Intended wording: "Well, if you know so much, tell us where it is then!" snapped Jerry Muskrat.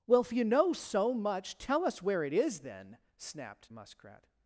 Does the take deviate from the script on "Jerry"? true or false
true